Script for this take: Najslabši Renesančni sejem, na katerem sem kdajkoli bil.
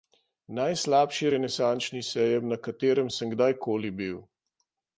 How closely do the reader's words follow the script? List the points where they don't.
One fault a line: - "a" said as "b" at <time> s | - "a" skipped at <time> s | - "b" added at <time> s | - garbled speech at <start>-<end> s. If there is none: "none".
none